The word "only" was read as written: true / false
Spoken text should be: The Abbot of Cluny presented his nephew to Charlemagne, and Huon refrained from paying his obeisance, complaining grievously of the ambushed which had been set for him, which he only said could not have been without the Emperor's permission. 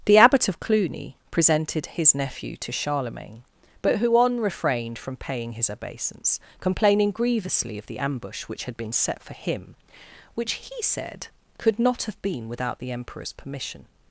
false